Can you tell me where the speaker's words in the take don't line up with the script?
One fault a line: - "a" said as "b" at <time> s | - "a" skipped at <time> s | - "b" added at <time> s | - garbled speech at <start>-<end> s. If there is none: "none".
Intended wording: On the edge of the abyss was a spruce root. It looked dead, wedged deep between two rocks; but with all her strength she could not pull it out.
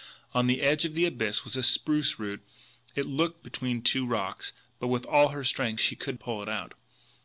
- "dead wedged deep" skipped at 3.5 s
- "not" skipped at 6.2 s